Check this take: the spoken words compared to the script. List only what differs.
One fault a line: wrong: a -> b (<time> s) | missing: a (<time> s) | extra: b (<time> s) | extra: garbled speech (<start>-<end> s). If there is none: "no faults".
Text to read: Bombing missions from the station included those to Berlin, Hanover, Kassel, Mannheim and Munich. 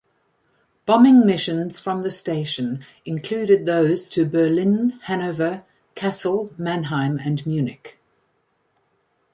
no faults